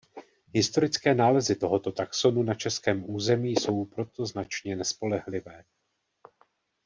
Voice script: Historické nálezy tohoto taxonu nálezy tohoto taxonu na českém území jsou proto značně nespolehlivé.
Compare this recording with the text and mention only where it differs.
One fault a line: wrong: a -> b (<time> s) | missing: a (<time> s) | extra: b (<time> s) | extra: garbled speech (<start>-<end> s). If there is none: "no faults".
missing: nálezy tohoto taxonu (2.4 s)